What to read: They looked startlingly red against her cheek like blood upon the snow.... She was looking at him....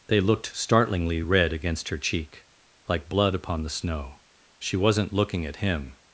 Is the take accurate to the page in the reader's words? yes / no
no